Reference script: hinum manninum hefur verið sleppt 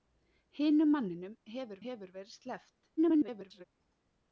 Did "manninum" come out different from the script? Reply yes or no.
no